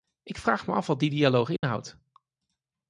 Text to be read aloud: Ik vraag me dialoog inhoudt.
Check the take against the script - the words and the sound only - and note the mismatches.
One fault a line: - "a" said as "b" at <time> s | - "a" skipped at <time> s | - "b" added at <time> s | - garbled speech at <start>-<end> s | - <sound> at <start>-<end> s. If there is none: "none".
- "af wat die" added at 0.7 s
- dropout at 1.6-1.6 s